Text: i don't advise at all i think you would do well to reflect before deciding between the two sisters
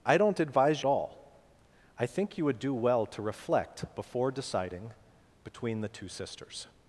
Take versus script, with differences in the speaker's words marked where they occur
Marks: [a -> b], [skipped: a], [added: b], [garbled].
i don't advise at all i think you would do well to reflect before deciding between the two sisters